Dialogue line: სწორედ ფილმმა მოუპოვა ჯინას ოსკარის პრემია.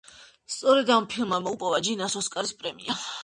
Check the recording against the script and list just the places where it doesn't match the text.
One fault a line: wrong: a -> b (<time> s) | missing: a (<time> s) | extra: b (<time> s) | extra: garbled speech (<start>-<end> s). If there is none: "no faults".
extra: ამ (0.9 s)